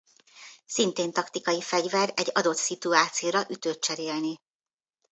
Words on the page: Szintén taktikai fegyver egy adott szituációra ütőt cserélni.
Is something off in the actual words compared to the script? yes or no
no